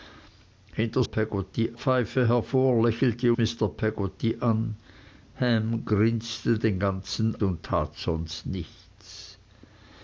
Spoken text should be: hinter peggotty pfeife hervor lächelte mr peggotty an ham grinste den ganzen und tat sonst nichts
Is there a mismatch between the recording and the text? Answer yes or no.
no